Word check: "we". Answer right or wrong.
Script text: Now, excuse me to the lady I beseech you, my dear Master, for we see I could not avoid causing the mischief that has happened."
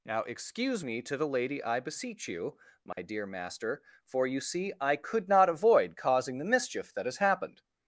wrong